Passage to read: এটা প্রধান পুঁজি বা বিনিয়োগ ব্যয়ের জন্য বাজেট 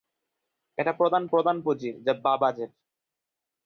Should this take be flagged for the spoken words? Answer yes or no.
yes